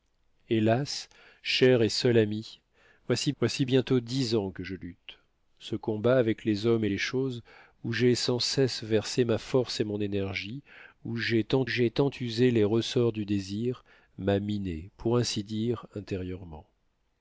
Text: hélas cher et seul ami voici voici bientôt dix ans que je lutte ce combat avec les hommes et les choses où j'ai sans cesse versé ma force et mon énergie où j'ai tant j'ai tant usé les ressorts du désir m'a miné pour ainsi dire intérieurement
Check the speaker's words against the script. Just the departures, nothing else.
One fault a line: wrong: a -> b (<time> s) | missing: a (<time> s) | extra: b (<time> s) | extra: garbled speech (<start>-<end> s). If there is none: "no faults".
no faults